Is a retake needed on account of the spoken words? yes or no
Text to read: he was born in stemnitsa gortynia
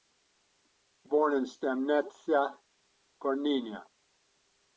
yes